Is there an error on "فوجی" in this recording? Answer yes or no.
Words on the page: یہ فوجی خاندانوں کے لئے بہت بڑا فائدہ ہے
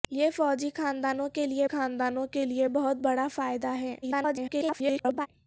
no